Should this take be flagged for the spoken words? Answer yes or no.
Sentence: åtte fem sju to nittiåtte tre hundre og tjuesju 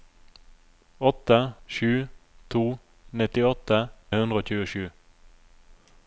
yes